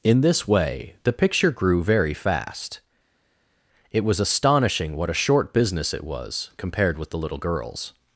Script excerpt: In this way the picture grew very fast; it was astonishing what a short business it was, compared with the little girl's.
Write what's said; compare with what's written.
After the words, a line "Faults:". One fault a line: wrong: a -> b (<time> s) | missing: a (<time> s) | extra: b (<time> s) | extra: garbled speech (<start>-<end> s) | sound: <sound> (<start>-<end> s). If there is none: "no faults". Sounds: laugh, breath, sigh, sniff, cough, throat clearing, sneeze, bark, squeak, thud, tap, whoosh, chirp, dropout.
In this way the picture grew very fast; it was astonishing what a short business it was, compared with the little girl's.
Faults:
no faults